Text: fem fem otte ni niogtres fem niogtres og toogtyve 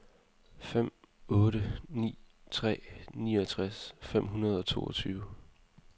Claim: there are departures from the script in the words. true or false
true